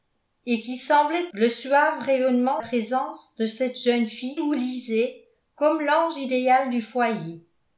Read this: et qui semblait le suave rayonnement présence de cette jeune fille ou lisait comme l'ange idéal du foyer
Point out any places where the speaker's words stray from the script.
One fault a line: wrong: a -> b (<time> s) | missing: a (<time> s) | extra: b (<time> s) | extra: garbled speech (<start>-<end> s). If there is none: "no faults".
no faults